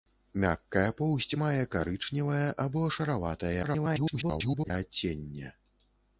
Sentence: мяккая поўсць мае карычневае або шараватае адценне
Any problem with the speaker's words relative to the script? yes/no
yes